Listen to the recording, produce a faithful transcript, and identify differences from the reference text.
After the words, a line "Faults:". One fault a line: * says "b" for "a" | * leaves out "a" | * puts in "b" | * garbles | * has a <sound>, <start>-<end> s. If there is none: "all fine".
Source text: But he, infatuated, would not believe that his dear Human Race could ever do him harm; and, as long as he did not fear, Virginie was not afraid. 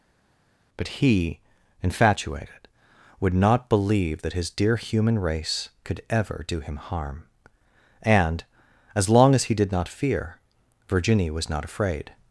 But he, infatuated, would not believe that his dear Human Race could ever do him harm; and, as long as he did not fear, Virginie was not afraid.
Faults:
all fine